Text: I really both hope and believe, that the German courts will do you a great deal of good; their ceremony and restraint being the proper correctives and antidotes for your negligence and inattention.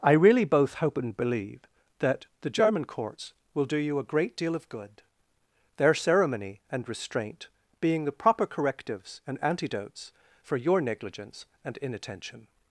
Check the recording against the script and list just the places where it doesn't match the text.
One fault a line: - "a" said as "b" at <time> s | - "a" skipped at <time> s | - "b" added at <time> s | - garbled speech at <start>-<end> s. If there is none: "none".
none